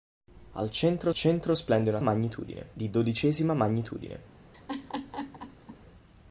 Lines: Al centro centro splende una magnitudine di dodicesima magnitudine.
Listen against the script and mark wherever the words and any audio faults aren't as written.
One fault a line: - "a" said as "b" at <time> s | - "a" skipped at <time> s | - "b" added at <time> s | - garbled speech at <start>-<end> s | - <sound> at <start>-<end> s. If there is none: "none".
- laugh at 4.5-5.8 s